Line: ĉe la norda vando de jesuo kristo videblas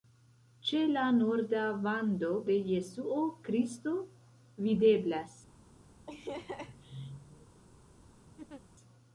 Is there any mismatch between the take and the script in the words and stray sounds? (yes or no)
yes